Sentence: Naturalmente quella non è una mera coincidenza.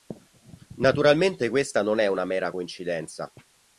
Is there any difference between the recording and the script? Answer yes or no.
yes